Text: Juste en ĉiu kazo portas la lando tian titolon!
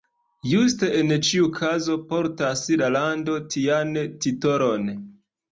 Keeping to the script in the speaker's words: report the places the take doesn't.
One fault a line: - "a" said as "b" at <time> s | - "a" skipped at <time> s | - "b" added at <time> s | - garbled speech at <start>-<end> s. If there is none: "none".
none